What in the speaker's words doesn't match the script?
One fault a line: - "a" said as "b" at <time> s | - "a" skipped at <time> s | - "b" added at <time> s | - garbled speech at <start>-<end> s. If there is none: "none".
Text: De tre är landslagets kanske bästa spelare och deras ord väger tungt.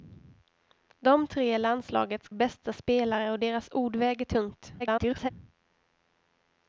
- "kanske" skipped at 2.3 s
- garbled speech at 4.8-5.3 s